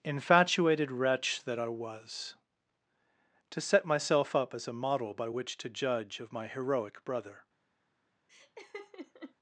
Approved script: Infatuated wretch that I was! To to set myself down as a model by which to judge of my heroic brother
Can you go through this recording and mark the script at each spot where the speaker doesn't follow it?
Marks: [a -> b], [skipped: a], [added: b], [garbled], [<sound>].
Infatuated wretch that I was! To [skipped: to] set myself [down -> up] as a model by which to judge of my heroic brother [laugh]